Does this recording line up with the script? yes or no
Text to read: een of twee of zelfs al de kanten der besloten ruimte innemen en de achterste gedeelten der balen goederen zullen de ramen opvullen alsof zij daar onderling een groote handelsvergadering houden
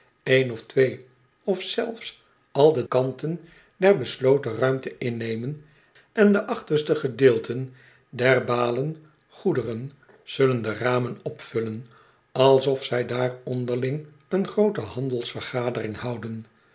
yes